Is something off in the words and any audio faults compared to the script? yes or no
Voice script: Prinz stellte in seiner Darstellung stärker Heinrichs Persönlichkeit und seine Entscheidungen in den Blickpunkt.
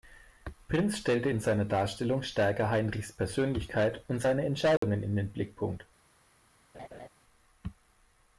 yes